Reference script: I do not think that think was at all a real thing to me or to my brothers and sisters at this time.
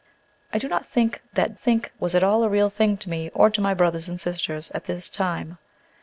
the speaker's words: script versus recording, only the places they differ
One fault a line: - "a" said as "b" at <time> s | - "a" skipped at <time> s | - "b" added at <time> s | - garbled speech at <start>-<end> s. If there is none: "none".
none